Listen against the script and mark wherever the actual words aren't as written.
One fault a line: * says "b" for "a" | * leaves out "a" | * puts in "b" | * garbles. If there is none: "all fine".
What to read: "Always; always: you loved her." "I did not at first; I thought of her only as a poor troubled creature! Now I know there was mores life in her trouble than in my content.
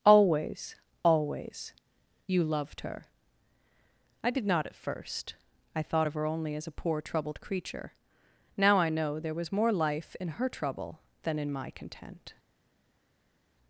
* says "more" for "mores"